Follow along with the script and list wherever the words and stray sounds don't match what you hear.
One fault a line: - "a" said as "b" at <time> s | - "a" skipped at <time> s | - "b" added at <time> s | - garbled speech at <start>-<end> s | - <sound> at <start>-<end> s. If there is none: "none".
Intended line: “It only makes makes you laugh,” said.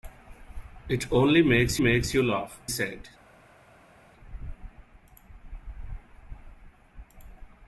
none